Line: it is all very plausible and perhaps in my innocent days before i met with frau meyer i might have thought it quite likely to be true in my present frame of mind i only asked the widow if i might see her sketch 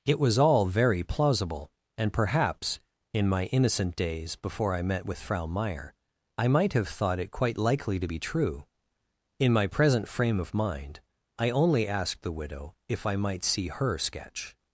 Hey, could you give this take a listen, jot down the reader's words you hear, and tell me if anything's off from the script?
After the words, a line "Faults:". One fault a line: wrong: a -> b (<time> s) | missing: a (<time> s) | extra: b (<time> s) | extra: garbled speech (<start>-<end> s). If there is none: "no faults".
it was all very plausible and perhaps in my innocent days before i met with frau meyer i might have thought it quite likely to be true in my present frame of mind i only asked the widow if i might see her sketch
Faults:
wrong: is -> was (0.2 s)